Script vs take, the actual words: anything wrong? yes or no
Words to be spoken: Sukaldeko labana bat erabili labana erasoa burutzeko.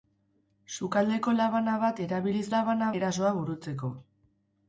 no